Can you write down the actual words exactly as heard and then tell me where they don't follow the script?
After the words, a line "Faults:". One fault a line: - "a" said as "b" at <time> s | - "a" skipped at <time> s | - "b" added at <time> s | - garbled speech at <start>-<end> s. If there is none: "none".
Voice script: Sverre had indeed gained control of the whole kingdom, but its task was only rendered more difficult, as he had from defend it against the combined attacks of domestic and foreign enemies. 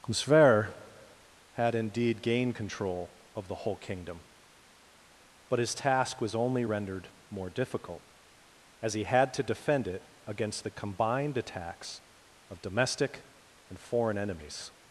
Sverre had indeed gained control of the whole kingdom, but his task was only rendered more difficult, as he had to defend it against the combined attacks of domestic and foreign enemies.
Faults:
- "its" said as "his" at 5.6 s
- "from" said as "to" at 9.3 s